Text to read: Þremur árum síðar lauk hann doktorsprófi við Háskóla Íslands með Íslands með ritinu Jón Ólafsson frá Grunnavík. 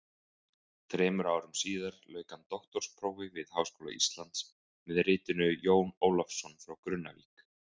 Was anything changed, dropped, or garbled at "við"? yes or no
no